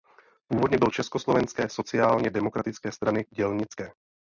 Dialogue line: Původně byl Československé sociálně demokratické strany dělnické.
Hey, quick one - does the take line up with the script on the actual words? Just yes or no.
yes